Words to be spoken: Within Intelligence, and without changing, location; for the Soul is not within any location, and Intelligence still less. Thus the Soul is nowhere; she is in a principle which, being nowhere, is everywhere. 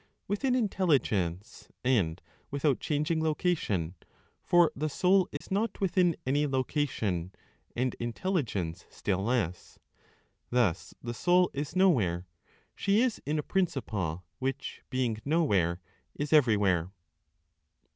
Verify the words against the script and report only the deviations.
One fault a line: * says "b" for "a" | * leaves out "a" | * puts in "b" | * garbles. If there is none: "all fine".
all fine